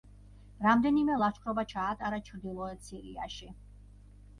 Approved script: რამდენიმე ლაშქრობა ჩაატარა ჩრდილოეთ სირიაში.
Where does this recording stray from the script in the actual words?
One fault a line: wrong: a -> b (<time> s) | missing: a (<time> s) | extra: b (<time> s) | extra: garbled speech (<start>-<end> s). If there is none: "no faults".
no faults